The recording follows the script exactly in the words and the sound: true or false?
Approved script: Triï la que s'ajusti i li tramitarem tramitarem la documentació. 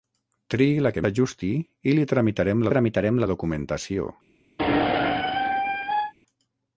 false